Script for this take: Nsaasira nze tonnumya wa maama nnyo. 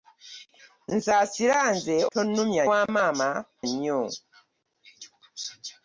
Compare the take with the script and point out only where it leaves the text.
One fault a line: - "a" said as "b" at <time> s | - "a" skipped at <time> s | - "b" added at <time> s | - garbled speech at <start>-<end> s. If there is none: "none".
none